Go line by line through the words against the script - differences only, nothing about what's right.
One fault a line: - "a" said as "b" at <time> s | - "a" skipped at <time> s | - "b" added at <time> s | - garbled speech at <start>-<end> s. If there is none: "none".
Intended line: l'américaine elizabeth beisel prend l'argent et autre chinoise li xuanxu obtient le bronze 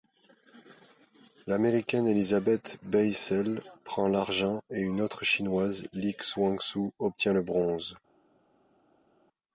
- "une" added at 4.8 s